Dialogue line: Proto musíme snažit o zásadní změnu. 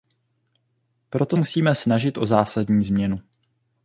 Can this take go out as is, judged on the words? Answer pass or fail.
pass